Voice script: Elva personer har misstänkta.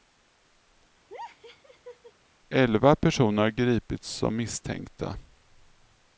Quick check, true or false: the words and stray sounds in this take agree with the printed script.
false